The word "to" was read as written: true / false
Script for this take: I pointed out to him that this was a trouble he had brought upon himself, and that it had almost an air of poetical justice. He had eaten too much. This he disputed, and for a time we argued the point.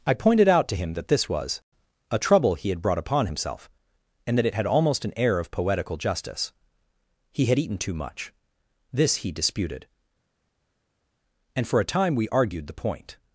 true